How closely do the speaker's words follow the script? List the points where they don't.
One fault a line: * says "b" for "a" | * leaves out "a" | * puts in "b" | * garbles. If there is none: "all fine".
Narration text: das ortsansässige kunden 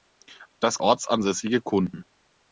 all fine